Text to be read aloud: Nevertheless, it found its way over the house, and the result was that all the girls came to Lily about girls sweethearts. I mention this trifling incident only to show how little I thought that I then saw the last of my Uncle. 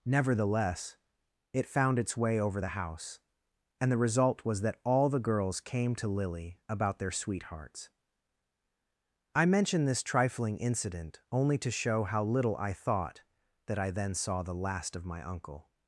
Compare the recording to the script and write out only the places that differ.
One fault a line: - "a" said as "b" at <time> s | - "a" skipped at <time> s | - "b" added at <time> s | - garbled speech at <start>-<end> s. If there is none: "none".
- "girls" said as "their" at 7.0 s